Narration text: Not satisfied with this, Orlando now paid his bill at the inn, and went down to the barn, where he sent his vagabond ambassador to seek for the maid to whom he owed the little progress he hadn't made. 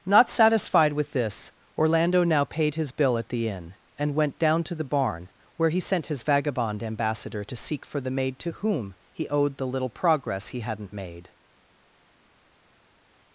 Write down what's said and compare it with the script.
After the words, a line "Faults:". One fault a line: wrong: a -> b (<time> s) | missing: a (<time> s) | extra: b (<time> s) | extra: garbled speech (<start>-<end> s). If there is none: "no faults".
Not satisfied with this, Orlando now paid his bill at the inn, and went down to the barn, where he sent his vagabond ambassador to seek for the maid to whom he owed the little progress he hadn't made.
Faults:
no faults